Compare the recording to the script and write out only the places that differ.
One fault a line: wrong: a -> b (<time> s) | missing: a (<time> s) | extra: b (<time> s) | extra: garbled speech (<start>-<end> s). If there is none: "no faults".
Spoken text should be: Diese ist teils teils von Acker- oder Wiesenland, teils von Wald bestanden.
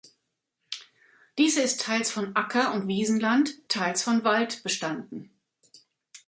missing: teils (2.1 s)
wrong: oder -> und (2.7 s)